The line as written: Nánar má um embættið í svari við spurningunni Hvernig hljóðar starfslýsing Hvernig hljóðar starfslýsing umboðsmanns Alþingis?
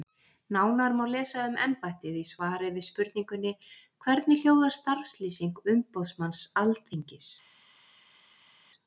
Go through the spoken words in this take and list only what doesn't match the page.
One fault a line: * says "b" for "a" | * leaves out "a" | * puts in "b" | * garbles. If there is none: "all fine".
* puts in "lesa"
* leaves out "Hvernig hljóðar starfslýsing"